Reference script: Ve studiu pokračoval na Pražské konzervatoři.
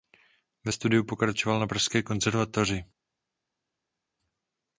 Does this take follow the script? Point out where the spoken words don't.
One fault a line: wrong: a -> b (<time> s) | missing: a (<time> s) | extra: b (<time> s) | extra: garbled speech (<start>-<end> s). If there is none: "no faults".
no faults